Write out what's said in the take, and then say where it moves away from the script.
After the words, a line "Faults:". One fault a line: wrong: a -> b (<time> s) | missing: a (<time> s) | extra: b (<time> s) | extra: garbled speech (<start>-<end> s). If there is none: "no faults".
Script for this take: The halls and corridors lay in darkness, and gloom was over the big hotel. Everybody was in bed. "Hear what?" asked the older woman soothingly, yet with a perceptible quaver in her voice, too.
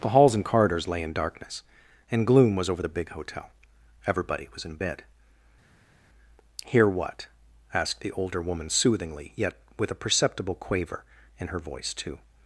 The halls and corridors lay in darkness, and gloom was over the big hotel. Everybody was in bed. "Hear what?" asked the older woman soothingly, yet with a perceptible quaver in her voice, too.
Faults:
no faults